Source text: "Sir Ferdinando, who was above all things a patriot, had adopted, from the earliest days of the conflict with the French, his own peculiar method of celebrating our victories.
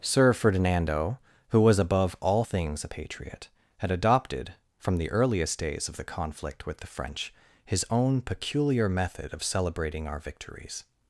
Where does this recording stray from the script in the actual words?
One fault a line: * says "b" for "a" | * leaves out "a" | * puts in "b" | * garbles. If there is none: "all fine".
all fine